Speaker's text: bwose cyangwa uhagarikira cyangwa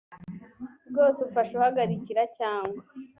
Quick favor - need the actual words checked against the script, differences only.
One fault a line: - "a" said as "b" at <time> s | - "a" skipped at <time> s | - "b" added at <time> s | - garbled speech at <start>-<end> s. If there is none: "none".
- "cyangwa" said as "ufasha" at 1.3 s